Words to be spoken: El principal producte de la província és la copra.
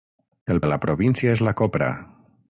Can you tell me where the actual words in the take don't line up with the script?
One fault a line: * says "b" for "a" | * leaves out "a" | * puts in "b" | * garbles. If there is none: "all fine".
* leaves out "principal producte"